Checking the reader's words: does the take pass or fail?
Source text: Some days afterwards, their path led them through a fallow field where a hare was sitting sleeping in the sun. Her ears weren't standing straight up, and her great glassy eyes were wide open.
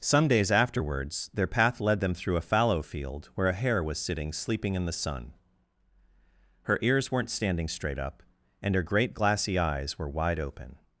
pass